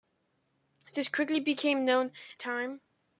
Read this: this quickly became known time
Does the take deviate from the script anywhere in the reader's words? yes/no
no